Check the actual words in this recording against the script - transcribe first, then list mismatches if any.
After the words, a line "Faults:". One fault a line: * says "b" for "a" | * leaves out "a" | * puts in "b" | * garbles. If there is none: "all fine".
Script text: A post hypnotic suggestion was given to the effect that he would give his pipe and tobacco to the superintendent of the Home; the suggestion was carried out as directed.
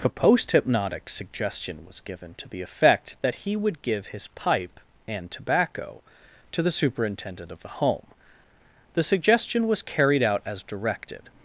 A post hypnotic suggestion was given to the effect that he would give his pipe and tobacco to the superintendent of the Home; the suggestion was carried out as directed.
Faults:
all fine